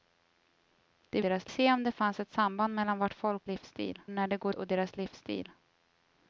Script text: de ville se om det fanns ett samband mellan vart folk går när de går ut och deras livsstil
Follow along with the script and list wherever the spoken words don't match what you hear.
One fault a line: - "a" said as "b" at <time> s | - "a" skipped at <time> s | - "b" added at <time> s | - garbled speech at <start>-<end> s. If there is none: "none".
- "ville" said as "deras" at 1.2 s
- "går" said as "livsstil" at 3.5 s
- "ut" skipped at 4.6 s